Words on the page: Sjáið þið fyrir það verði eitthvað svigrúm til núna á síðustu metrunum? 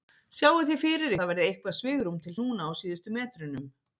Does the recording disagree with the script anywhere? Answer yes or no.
no